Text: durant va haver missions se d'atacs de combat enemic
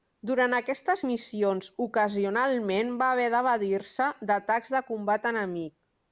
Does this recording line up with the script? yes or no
no